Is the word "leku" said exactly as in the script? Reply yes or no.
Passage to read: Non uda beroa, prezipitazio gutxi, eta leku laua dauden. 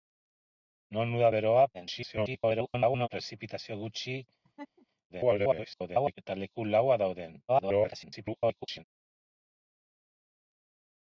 yes